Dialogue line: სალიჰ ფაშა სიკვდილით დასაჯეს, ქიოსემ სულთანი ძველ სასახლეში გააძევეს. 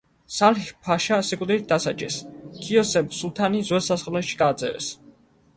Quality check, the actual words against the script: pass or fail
pass